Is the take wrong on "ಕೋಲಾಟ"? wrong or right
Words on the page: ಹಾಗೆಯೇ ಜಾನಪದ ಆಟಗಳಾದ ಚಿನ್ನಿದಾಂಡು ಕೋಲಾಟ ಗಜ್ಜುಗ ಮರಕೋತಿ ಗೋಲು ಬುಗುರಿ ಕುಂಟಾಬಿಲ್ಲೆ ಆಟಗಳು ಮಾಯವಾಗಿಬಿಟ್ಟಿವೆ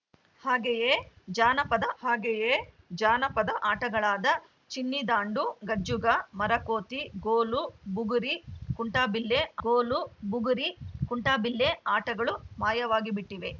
wrong